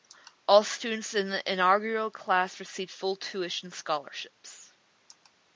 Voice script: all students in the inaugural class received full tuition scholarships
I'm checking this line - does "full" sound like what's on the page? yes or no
yes